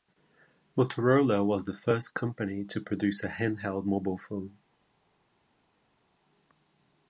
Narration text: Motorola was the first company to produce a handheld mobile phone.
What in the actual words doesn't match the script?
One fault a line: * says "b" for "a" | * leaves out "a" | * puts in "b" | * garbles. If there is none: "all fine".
all fine